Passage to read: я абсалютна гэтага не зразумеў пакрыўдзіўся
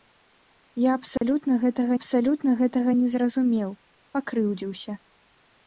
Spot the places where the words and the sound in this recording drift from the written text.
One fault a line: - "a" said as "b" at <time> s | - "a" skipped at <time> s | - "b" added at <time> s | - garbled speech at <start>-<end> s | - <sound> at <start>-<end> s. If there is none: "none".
- dropout at 1.2-1.2 s
- "абсалютна гэтага" added at 2.0 s